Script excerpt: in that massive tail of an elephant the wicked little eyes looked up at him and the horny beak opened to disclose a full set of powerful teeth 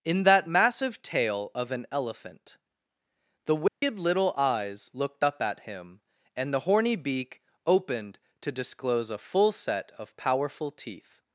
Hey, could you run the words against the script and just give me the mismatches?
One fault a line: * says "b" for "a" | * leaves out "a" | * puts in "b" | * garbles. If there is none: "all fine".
all fine